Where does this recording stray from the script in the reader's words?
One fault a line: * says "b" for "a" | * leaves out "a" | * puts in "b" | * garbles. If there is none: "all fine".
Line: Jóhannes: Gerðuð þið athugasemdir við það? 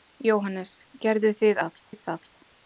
* says "það" for "athugasemdir"